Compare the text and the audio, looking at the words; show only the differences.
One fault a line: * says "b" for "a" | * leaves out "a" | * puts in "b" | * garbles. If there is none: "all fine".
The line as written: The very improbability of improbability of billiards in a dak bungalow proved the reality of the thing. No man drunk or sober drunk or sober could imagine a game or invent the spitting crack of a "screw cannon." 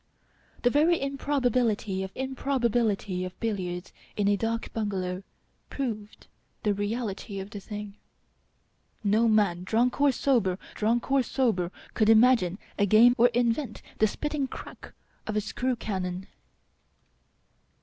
all fine